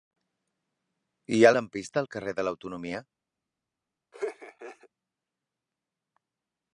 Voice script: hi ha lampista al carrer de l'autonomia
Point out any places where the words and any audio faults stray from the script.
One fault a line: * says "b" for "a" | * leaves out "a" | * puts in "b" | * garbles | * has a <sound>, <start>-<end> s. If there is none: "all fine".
* has a laugh, 4.1-4.9 s